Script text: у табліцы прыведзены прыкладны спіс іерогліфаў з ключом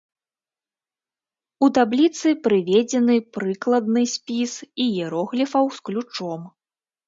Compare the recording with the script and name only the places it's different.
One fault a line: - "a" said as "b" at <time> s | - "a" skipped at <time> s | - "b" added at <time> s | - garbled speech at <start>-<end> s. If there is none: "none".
none